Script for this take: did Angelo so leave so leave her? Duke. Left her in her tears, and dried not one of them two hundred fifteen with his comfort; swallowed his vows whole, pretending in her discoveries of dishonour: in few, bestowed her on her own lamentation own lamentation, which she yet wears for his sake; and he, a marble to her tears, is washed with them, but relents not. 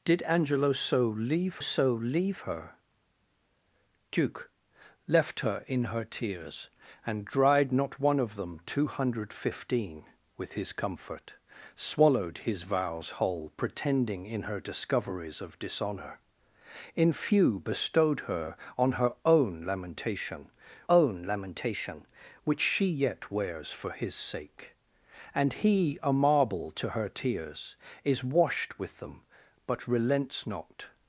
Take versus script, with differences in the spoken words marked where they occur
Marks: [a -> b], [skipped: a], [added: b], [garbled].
did Angelo so leave so leave her? Duke. Left her in her tears, and dried not one of them two hundred fifteen with his comfort; swallowed his vows whole, pretending in her discoveries of dishonour: in few, bestowed her on her own lamentation own lamentation, which she yet wears for his sake; and he, a marble to her tears, is washed with them, but relents not.